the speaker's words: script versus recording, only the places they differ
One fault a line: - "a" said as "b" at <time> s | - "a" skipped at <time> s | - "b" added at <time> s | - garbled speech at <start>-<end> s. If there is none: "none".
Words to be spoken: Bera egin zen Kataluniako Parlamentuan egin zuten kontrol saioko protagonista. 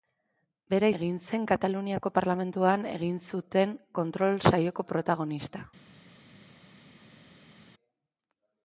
none